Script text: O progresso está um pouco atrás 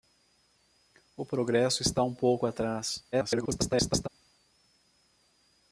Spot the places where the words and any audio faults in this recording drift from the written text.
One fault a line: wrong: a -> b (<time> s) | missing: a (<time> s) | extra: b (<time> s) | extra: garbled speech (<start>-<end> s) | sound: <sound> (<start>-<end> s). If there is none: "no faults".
extra: garbled speech (3.1-4.1 s)